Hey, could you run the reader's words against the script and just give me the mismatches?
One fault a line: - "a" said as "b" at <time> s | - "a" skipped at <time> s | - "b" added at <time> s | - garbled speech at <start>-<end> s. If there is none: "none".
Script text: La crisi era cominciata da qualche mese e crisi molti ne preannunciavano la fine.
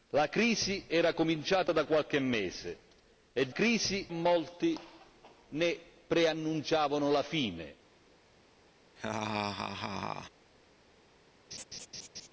none